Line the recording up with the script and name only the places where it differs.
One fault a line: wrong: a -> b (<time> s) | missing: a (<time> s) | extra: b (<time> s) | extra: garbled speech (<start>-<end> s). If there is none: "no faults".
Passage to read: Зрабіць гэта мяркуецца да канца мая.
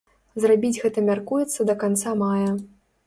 no faults